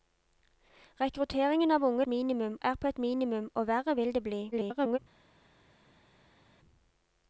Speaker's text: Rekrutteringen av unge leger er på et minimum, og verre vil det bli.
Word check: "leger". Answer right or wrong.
wrong